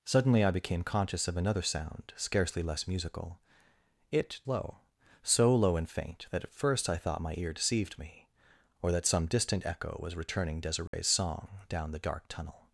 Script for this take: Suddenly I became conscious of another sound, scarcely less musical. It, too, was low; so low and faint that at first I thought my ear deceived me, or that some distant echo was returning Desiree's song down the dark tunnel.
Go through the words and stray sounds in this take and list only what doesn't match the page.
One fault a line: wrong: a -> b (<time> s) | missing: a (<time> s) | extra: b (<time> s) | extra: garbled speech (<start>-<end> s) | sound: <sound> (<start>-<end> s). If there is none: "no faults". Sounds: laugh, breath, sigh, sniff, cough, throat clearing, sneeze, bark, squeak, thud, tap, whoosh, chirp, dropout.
missing: too was (4.4 s)
sound: dropout (10.9-10.9 s)